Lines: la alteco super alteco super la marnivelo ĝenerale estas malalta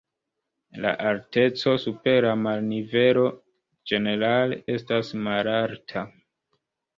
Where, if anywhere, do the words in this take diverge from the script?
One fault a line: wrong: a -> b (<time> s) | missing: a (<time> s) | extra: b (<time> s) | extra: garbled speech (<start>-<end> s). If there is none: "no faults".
missing: alteco super (2.2 s)